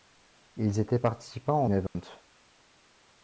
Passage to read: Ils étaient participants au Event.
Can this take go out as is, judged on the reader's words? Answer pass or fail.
pass